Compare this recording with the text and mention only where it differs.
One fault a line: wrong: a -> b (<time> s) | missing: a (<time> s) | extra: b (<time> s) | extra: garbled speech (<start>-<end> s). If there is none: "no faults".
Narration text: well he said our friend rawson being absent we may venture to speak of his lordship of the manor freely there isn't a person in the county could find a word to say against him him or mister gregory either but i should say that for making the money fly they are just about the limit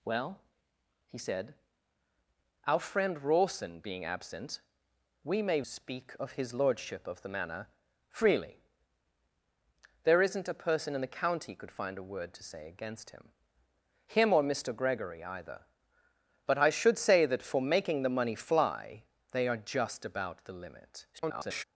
missing: venture to (5.6 s)
extra: garbled speech (21.1-21.6 s)